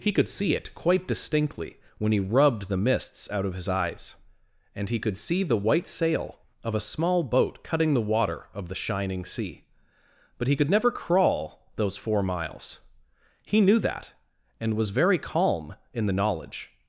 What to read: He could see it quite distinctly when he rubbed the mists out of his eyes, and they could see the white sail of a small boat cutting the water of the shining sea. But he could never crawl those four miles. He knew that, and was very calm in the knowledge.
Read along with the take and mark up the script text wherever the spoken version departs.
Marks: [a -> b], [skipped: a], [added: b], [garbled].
He could see it quite distinctly when he rubbed the mists out of his eyes, and [they -> he] could see the white sail of a small boat cutting the water of the shining sea. But he could never crawl those four miles. He knew that, and was very calm in the knowledge.